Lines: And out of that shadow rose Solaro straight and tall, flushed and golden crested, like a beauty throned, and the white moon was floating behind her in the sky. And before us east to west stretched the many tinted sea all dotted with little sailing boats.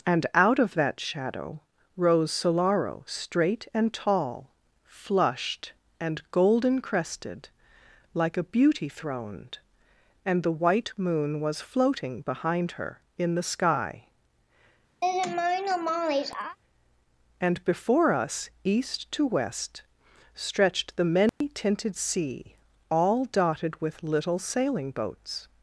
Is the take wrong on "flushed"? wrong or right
right